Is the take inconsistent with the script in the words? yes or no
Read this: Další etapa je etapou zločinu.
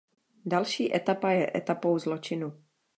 no